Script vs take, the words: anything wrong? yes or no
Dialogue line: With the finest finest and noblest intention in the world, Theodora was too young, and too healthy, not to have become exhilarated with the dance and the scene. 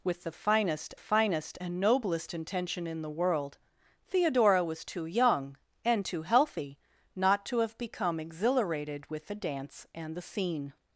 no